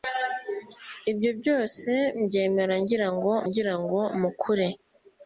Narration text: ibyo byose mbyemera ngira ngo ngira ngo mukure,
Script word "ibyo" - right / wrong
right